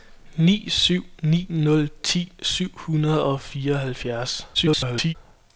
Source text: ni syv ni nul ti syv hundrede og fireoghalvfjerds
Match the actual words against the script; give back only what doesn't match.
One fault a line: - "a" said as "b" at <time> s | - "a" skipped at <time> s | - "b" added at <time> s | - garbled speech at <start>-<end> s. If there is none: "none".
- garbled speech at 4.5-5.2 s